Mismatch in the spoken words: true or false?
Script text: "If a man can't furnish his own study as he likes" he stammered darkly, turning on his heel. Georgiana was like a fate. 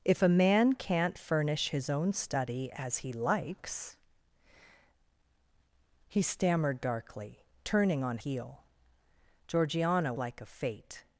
true